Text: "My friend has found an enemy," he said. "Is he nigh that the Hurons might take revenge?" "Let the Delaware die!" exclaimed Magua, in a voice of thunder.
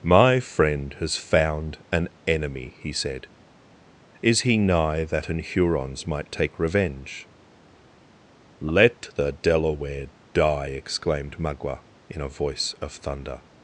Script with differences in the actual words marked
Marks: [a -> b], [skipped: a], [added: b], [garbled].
"My friend has found an enemy," he said. "Is he nigh that [the -> an] Hurons might take revenge?" "Let the Delaware die!" exclaimed Magua, in a voice of thunder.